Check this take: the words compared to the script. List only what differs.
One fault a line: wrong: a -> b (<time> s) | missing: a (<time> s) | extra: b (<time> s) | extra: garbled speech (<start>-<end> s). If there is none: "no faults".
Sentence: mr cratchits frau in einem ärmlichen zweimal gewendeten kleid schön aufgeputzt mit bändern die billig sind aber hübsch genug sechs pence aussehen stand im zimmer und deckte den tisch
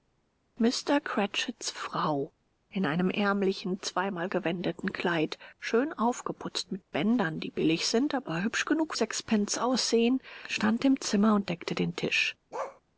no faults